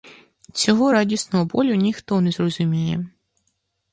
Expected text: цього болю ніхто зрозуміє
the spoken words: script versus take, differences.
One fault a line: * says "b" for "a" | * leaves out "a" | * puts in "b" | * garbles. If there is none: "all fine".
* puts in "радісного"
* puts in "не"